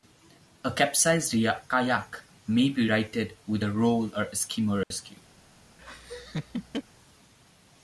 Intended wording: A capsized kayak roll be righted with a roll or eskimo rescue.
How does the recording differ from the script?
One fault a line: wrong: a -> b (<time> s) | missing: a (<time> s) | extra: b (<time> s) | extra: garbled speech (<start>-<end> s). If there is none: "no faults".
wrong: roll -> may (2.5 s)